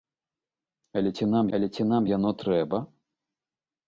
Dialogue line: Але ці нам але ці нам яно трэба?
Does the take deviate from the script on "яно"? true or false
false